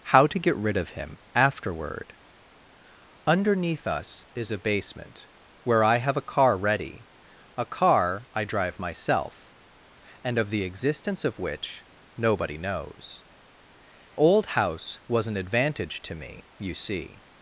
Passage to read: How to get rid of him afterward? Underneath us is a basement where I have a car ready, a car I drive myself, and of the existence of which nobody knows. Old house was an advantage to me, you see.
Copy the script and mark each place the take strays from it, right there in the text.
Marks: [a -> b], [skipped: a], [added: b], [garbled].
How to get rid of him afterward? Underneath us is a basement where I have a car ready, a car I drive myself, and of the existence of which nobody knows. Old house was an advantage to me, you see.